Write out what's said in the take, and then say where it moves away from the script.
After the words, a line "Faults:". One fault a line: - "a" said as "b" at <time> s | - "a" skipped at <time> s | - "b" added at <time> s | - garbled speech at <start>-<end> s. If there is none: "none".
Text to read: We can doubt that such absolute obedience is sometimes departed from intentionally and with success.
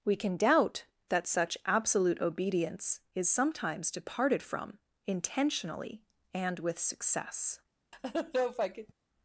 We can doubt that such absolute obedience is sometimes departed from intentionally and with success.
Faults:
none